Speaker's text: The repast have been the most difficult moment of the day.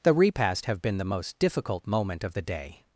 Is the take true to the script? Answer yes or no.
yes